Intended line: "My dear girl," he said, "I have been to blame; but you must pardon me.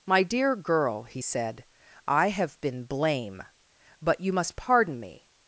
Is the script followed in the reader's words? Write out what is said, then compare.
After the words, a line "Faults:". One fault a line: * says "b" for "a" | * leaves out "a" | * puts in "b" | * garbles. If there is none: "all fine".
"My dear girl," he said, "I have been blame; but you must pardon me.
Faults:
* leaves out "to"